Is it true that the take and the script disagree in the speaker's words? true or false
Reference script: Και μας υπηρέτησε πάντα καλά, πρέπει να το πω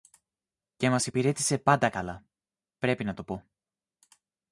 false